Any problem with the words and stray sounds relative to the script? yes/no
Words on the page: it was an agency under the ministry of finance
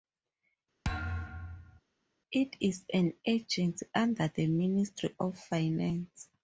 yes